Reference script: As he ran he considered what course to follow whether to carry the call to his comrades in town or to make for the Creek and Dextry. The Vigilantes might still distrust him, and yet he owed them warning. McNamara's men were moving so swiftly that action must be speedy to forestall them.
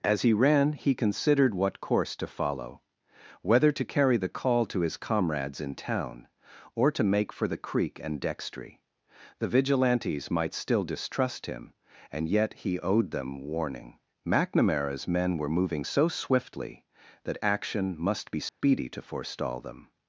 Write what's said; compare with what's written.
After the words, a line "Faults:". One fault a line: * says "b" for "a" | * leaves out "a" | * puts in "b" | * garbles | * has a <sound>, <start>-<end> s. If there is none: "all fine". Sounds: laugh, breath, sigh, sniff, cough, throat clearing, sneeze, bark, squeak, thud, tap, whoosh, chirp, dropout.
As he ran he considered what course to follow whether to carry the call to his comrades in town or to make for the Creek and Dextry. The Vigilantes might still distrust him, and yet he owed them warning. McNamara's men were moving so swiftly that action must be speedy to forestall them.
Faults:
* has a dropout, 18.5-18.6 s